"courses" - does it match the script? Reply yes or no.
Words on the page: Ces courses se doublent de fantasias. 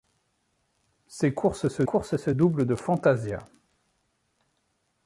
yes